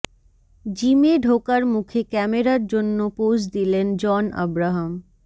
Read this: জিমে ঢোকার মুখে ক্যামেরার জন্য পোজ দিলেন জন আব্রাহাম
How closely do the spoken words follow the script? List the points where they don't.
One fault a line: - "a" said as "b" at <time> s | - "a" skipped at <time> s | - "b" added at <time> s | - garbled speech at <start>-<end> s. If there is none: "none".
none